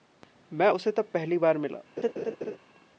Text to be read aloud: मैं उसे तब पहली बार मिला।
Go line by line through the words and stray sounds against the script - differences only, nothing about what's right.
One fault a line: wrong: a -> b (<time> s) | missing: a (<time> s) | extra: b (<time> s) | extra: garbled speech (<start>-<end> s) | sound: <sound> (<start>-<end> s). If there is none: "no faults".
sound: laugh (2.0-2.6 s)